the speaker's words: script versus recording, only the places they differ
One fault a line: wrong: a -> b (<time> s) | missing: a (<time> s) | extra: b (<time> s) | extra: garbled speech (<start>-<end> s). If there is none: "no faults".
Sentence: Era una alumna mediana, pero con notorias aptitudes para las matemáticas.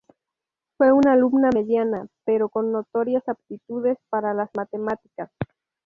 wrong: Era -> Fue (0.8 s)